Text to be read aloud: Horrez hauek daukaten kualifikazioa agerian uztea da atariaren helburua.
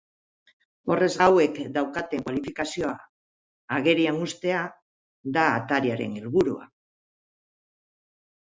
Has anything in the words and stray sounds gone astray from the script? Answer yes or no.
no